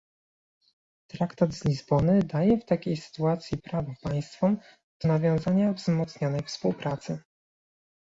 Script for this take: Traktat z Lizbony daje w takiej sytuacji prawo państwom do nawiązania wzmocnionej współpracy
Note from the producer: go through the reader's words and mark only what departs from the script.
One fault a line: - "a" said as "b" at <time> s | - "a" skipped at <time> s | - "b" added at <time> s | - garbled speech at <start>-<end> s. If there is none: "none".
none